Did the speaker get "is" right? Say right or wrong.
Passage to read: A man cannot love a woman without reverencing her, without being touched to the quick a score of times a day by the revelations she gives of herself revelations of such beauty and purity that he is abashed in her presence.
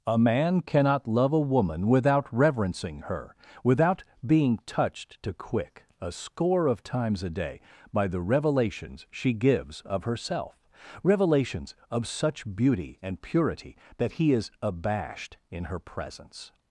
right